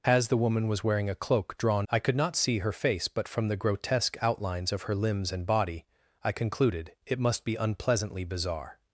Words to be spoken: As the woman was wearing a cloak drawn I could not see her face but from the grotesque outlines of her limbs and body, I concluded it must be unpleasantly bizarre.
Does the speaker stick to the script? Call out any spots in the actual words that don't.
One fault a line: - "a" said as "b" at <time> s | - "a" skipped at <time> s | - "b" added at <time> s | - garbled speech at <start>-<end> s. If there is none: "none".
none